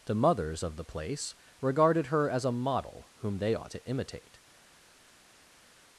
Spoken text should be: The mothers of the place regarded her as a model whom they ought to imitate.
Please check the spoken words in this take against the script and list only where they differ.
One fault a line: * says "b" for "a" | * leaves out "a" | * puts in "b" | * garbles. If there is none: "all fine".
all fine